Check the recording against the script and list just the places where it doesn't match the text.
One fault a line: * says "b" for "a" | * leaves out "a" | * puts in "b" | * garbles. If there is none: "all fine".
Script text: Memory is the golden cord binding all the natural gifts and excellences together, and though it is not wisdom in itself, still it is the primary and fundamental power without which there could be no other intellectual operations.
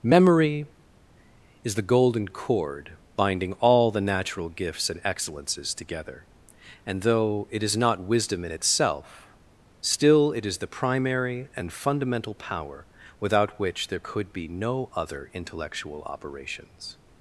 all fine